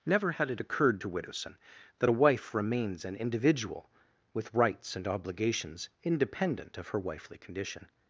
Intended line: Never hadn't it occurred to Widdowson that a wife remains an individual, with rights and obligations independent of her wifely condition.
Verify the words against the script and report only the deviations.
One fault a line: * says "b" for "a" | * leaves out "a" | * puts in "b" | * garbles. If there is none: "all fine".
* says "had" for "hadn't"